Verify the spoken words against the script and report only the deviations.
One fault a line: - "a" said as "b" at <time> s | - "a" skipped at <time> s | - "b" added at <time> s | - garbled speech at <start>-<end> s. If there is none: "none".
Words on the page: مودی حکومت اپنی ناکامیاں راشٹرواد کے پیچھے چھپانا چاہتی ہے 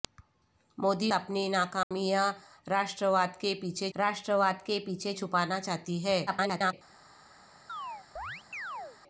- "حکومت" skipped at 1.1 s
- "راشٹرواد کے پیچھے" added at 3.9 s
- garbled speech at 6.3-6.7 s